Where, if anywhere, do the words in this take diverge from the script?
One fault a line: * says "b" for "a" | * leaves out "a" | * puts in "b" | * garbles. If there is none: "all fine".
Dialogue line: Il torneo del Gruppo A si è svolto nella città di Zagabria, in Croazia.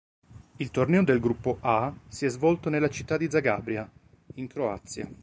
all fine